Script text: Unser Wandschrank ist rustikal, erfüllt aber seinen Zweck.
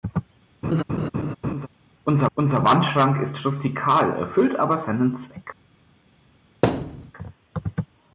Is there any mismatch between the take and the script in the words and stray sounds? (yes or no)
yes